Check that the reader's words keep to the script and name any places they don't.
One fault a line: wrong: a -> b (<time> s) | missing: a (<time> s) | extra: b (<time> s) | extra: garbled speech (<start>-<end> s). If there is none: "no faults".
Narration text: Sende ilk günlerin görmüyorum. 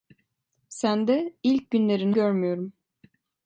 no faults